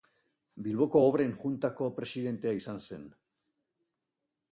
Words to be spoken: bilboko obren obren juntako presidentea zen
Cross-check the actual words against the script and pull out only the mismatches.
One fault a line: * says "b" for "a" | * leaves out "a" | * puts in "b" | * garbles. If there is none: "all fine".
* leaves out "obren"
* puts in "izan"